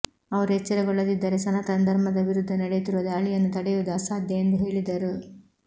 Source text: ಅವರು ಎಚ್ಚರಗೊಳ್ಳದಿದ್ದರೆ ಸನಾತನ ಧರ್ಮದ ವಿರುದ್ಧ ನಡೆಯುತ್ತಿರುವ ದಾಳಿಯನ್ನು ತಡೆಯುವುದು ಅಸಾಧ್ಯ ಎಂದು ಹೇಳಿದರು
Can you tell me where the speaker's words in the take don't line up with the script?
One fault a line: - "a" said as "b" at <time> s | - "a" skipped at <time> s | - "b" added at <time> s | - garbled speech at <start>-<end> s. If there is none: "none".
none